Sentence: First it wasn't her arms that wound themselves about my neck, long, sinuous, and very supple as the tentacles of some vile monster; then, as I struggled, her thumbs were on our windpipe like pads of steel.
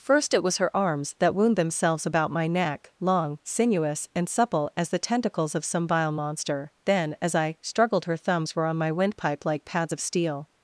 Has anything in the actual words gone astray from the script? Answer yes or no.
yes